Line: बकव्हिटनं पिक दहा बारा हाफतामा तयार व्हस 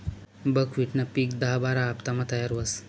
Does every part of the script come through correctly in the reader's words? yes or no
yes